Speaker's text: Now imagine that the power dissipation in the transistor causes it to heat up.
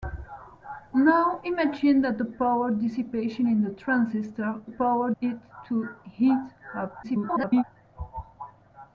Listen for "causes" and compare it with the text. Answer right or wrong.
wrong